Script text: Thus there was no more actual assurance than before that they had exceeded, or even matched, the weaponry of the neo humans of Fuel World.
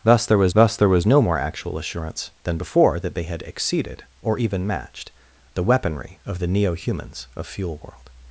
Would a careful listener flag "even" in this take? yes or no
no